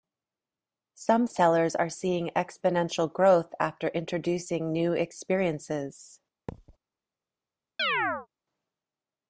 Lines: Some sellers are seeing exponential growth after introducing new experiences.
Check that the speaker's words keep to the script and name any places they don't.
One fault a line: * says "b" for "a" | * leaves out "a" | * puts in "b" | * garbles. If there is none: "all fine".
all fine